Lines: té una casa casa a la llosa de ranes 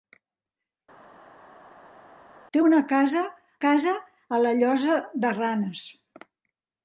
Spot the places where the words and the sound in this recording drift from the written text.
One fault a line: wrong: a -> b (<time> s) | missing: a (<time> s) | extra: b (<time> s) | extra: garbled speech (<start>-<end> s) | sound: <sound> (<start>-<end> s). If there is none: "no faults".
no faults